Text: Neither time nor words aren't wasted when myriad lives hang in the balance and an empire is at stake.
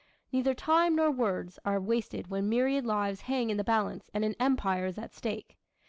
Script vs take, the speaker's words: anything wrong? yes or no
yes